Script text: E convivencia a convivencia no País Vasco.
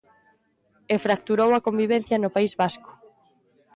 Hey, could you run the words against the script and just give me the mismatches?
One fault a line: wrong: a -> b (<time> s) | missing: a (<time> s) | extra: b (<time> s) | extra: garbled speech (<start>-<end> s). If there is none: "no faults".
wrong: convivencia -> fracturou (1.1 s)